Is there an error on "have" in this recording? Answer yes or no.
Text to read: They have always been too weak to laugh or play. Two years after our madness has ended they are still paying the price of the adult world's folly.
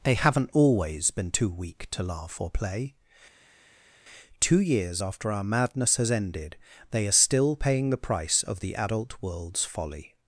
yes